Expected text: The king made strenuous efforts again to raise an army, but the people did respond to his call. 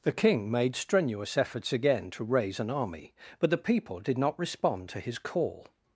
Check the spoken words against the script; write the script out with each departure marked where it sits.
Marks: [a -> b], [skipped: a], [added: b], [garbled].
The king made strenuous efforts again to raise an army, but the people did [added: not] respond to his call.